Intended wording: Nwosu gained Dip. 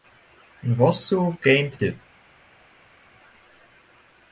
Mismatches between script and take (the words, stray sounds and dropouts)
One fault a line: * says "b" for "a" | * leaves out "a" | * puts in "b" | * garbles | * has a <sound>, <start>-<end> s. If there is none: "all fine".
all fine